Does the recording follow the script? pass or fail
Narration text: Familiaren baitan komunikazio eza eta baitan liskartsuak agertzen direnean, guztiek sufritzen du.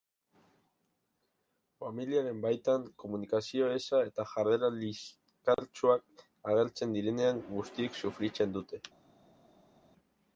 fail